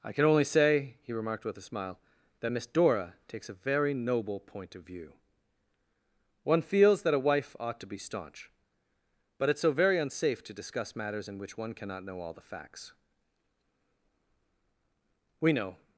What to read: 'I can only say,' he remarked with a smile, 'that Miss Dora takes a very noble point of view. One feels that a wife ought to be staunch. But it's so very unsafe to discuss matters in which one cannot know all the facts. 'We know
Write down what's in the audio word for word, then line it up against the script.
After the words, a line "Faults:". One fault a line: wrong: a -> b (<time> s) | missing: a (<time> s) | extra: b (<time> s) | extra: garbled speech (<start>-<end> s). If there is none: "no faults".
'I can only say,' he remarked with a smile, 'that Miss Dora takes a very noble point of view. One feels that a wife ought to be staunch. But it's so very unsafe to discuss matters in which one cannot know all the facts. 'We know
Faults:
no faults